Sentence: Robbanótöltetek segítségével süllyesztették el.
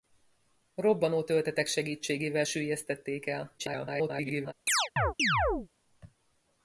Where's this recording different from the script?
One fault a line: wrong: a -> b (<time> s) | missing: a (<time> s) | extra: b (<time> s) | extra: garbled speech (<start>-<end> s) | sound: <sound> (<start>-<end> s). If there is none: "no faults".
extra: garbled speech (3.6-4.5 s)
sound: chirp (4.7-5.7 s)